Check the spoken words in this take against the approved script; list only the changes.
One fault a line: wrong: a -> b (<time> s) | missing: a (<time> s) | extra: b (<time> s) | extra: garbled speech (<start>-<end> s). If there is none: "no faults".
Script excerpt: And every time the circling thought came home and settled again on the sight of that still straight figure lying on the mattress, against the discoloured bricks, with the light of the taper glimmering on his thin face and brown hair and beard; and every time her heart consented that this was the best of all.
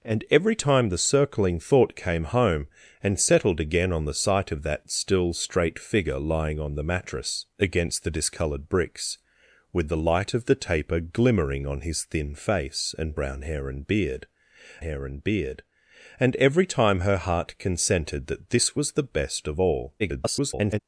extra: hair and beard (14.8 s)
extra: garbled speech (20.0-20.8 s)